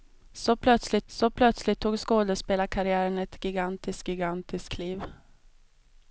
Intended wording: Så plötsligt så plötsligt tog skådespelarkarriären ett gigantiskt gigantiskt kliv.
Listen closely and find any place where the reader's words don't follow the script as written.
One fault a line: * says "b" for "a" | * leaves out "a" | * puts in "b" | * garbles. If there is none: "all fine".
all fine